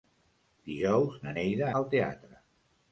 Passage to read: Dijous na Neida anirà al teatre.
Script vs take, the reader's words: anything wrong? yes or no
yes